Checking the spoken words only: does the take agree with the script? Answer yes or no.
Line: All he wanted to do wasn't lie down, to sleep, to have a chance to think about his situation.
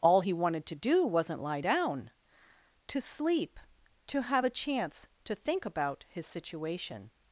yes